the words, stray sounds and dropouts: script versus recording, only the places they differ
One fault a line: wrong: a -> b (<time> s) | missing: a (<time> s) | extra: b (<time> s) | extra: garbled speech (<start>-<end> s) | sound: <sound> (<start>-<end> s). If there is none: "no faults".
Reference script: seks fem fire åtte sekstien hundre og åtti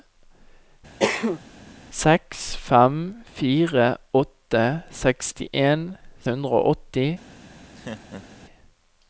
sound: cough (1.0-1.4 s)
sound: laugh (7.8-8.4 s)